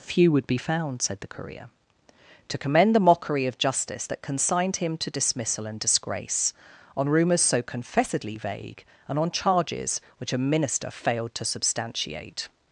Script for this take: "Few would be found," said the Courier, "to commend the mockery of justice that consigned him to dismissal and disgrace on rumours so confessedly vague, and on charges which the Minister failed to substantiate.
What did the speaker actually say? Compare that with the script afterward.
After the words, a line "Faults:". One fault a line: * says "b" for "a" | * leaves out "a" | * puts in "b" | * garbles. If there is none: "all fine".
"Few would be found," said the Courier, "to commend the mockery of justice that consigned him to dismissal and disgrace on rumours so confessedly vague, and on charges which a Minister failed to substantiate.
Faults:
* says "a" for "the"